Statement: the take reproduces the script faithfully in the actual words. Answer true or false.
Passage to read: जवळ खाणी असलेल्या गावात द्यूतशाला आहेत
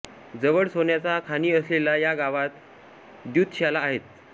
false